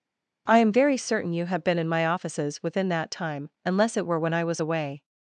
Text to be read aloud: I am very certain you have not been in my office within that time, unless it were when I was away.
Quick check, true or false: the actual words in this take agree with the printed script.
false